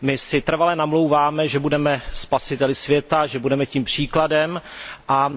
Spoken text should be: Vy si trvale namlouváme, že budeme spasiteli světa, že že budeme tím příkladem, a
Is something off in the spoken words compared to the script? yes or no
yes